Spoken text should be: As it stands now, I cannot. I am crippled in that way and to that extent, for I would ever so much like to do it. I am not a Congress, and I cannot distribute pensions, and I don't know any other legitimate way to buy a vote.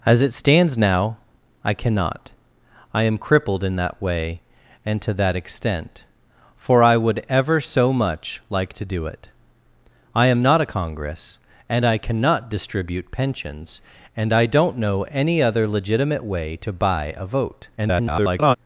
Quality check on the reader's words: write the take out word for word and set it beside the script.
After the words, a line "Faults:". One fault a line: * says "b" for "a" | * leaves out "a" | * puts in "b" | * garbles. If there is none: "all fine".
As it stands now, I cannot. I am crippled in that way and to that extent, for I would ever so much like to do it. I am not a Congress, and I cannot distribute pensions, and I don't know any other legitimate way to buy a vote. [garbled]
Faults:
* garbles